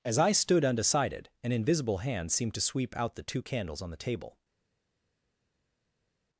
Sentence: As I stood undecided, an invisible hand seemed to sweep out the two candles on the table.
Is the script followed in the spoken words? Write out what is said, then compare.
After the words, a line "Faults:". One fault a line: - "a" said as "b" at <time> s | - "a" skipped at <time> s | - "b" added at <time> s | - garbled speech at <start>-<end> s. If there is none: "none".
As I stood undecided, an invisible hand seemed to sweep out the two candles on the table.
Faults:
none